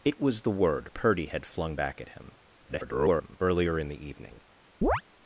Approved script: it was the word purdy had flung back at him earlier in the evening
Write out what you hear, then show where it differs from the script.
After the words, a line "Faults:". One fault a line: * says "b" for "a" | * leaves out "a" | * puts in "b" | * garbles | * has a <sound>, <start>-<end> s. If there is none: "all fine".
it was the word purdy had flung back at him [garbled] earlier in the evening
Faults:
* garbles
* has a chirp, 4.8-5.0 s